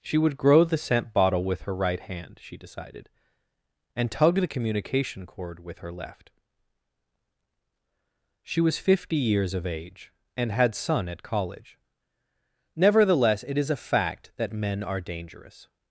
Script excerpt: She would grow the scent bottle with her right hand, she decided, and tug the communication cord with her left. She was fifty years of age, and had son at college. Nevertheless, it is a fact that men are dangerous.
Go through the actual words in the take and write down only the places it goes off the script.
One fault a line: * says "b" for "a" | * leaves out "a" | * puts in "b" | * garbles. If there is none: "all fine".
all fine